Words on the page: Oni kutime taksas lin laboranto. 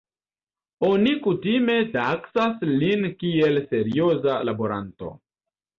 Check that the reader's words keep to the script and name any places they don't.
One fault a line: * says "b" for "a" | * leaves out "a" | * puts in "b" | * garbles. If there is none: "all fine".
* puts in "kiel serioza"